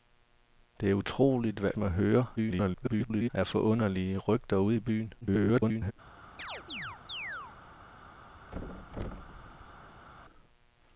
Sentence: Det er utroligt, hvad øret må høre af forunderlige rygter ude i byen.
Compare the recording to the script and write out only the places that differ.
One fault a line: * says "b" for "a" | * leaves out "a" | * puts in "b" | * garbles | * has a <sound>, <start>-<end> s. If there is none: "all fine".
* leaves out "øret"
* garbles
* garbles
* has a chirp, 6.4-7.6 s
* has a thud, 8.5-10.1 s